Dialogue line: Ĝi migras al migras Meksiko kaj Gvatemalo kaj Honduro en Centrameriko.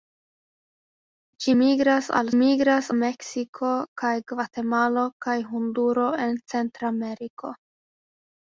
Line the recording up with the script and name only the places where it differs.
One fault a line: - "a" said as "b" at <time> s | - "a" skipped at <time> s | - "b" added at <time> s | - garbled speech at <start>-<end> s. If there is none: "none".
none